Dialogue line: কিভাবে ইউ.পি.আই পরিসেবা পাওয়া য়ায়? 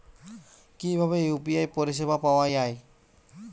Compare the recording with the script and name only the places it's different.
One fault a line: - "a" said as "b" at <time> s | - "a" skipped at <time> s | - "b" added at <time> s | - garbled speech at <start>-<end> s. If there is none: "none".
none